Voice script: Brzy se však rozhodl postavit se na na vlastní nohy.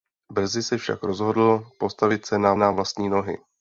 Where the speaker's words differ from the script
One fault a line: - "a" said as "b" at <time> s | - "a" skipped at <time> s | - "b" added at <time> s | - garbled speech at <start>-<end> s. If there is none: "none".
none